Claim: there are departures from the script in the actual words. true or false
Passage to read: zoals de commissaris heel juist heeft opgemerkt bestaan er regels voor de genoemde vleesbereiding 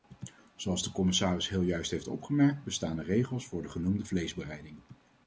false